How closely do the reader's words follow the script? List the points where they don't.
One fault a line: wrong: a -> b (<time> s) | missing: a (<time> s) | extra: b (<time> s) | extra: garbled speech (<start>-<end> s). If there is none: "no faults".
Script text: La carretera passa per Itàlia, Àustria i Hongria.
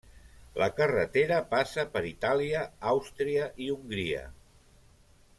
no faults